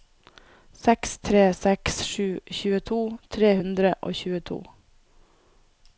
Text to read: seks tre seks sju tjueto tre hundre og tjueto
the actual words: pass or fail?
pass